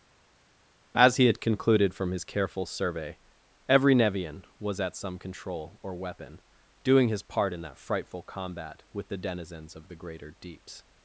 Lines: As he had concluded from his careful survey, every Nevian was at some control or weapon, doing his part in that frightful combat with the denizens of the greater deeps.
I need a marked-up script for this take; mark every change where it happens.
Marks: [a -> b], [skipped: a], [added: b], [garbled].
As he had concluded from his careful survey, every Nevian was at some control or weapon, doing his part in that frightful combat with the denizens of the greater deeps.